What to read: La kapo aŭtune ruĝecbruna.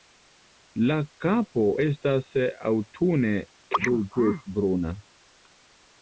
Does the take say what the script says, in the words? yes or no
no